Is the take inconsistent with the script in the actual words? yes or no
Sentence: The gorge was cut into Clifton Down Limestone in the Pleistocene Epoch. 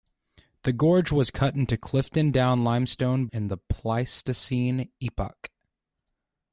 no